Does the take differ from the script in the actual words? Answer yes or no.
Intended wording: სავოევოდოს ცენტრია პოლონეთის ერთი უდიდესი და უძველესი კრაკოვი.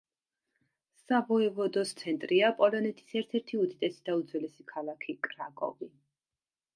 yes